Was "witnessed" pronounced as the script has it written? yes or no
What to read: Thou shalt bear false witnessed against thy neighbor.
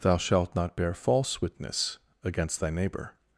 no